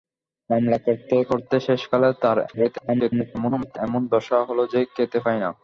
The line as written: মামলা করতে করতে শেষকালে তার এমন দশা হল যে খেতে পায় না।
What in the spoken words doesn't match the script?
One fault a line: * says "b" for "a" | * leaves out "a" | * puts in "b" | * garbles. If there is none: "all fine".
* garbles